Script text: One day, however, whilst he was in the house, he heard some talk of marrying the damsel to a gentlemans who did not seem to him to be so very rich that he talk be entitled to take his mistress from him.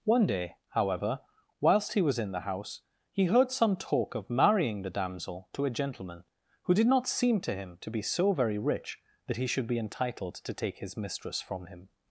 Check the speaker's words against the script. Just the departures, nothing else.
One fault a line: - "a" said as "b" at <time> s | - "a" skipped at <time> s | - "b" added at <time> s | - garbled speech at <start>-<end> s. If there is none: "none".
- "gentlemans" said as "gentleman" at 5.8 s
- "talk" said as "should" at 9.5 s